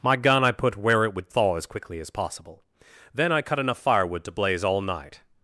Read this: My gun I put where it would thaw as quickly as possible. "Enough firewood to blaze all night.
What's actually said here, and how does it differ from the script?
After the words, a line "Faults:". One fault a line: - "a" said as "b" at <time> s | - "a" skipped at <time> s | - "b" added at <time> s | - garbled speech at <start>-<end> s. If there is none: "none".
My gun I put where it would thaw as quickly as possible. "Then I cut enough firewood to blaze all night.
Faults:
- "Then I cut" added at 3.1 s